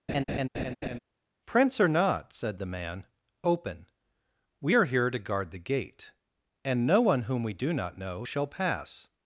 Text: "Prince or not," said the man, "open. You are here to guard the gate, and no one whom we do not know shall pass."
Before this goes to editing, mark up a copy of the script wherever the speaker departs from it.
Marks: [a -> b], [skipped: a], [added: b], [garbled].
"Prince or not," said the man, "open. [You -> We] are here to guard the gate, and no one whom we do not know shall pass."